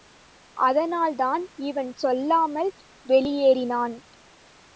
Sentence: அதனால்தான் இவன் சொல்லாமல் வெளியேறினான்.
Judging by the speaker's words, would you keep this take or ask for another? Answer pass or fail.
pass